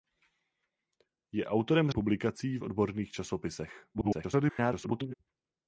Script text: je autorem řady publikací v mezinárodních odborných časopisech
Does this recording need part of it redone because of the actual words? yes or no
yes